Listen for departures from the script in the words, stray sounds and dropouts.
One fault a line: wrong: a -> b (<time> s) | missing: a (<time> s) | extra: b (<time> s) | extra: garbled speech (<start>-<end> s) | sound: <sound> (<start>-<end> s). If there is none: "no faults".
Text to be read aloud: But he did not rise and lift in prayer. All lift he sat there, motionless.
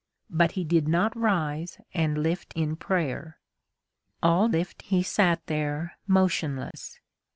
sound: dropout (6.7-6.7 s)